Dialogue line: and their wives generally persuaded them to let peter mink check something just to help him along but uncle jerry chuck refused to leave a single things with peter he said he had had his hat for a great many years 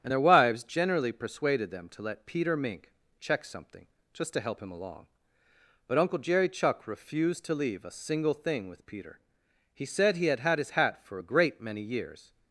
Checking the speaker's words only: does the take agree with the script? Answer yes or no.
no